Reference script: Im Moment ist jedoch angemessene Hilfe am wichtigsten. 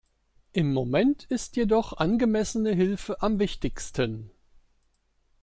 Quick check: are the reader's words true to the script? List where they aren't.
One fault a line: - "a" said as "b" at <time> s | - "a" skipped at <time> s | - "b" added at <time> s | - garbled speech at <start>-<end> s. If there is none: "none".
none